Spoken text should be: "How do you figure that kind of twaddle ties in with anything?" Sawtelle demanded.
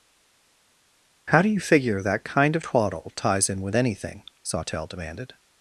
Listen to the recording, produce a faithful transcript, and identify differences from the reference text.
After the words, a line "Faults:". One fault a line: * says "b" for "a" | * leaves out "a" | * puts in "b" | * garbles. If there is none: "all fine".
"How do you figure that kind of twaddle ties in with anything?" Sawtelle demanded.
Faults:
all fine